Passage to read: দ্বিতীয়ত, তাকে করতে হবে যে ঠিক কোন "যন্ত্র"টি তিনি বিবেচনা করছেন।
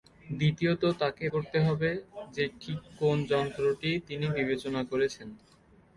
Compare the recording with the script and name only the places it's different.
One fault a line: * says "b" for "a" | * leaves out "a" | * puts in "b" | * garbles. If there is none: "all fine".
all fine